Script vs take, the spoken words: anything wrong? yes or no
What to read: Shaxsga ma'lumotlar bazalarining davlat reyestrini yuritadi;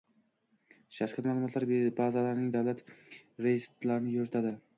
no